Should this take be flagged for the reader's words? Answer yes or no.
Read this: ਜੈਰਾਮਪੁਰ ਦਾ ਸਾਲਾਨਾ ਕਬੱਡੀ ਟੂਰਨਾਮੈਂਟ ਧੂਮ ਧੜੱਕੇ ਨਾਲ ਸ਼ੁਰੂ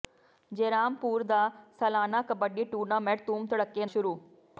yes